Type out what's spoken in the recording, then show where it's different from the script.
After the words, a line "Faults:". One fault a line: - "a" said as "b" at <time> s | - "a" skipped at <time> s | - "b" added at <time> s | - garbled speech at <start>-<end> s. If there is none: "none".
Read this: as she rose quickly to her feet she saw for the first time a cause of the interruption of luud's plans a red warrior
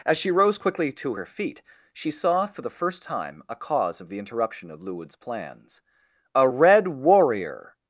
as she rose quickly to her feet she saw for the first time a cause of the interruption of luud's plans a red warrior
Faults:
none